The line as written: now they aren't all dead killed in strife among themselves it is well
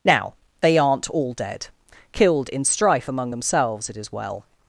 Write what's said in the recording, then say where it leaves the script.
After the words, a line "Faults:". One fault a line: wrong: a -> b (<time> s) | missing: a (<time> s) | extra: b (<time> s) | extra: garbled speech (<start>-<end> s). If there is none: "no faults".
now they aren't all dead killed in strife among themselves it is well
Faults:
no faults